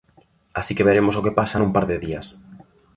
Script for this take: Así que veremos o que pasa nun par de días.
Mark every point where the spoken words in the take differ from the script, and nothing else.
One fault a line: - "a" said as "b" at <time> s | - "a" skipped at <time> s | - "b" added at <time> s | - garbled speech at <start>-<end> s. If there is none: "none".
none